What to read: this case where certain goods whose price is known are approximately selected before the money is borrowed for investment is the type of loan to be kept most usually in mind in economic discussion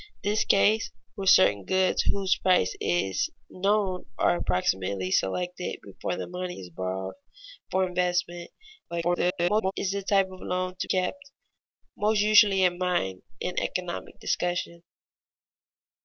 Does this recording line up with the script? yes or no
no